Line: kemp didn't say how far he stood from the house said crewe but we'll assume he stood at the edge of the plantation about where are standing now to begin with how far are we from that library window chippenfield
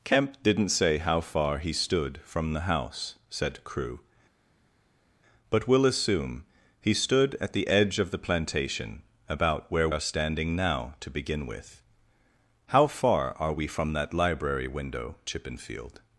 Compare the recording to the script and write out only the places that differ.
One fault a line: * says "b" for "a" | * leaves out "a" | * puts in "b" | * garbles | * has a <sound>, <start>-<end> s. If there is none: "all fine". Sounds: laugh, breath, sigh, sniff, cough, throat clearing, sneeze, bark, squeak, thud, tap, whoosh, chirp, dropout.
all fine